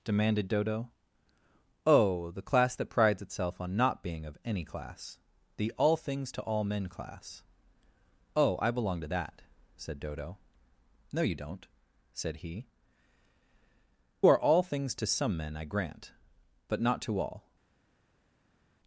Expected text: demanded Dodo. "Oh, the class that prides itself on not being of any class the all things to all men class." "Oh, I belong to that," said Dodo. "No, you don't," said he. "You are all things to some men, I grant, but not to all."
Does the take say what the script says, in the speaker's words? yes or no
no